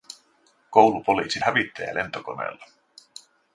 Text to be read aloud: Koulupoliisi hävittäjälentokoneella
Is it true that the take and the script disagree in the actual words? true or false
false